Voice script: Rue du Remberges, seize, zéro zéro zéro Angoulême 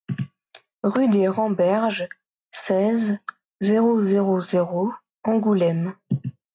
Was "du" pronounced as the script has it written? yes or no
no